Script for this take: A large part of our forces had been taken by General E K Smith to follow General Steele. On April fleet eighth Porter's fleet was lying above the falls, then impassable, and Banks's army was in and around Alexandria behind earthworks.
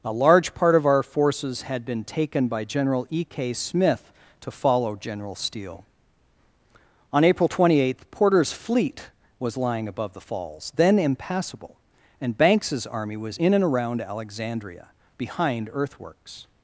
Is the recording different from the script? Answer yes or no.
yes